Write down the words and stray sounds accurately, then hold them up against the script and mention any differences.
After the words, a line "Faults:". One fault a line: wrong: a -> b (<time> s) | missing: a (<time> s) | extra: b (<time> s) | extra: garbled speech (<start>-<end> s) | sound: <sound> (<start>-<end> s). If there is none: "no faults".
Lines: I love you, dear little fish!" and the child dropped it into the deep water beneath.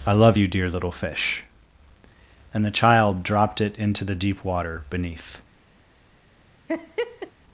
I love you, dear little fish!" and the child dropped it into the deep water beneath.
Faults:
sound: laugh (6.7-7.3 s)